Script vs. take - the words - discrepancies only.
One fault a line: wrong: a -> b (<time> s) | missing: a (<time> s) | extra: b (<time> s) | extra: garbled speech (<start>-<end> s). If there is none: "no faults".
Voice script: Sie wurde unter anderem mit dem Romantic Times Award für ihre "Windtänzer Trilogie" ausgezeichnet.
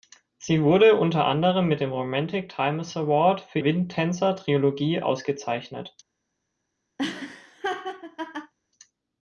missing: ihre (3.6 s)